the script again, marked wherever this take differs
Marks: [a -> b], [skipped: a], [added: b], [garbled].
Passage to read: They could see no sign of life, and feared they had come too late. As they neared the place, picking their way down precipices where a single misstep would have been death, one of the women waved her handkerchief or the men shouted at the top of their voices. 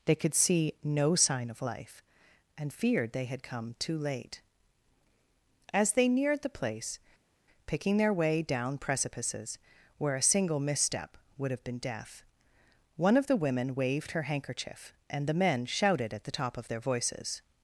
They could see no sign of life, and feared they had come too late. As they neared the place, picking their way down precipices where a single misstep would have been death, one of the women waved her handkerchief [or -> and] the men shouted at the top of their voices.